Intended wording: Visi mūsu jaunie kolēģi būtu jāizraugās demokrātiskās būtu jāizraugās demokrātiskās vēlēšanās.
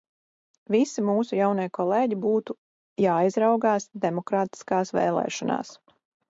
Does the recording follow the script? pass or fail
fail